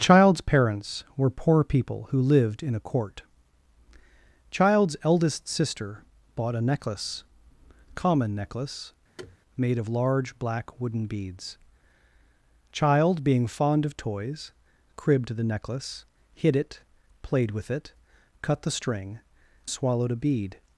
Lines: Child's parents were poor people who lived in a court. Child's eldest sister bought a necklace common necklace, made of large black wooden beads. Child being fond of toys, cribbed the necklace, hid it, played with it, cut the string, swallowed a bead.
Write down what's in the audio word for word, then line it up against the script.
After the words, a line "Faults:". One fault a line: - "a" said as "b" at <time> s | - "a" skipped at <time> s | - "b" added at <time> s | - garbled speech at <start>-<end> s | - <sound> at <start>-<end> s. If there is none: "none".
Child's parents were poor people who lived in a court. Child's eldest sister bought a necklace common necklace, made of large black wooden beads. Child being fond of toys, cribbed the necklace, hid it, played with it, cut the string, swallowed a bead.
Faults:
- thud at 9.2-9.4 s